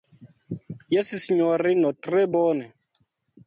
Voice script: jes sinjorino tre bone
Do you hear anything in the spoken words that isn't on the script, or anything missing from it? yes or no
no